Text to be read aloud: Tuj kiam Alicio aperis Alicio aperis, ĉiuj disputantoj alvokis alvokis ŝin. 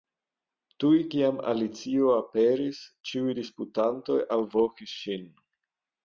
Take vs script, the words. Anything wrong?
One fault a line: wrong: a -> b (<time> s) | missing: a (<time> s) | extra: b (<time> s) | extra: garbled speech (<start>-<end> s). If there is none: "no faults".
missing: Alicio aperis (2.8 s)
missing: alvokis (5.0 s)